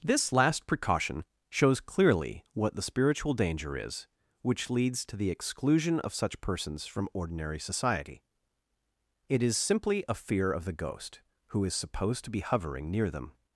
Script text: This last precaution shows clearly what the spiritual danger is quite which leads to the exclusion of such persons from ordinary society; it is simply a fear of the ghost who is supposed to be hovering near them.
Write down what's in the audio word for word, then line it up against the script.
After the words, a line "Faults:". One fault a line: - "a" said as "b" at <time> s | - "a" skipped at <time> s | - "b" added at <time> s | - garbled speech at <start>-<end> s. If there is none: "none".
This last precaution shows clearly what the spiritual danger is which leads to the exclusion of such persons from ordinary society; it is simply a fear of the ghost who is supposed to be hovering near them.
Faults:
- "quite" skipped at 4.1 s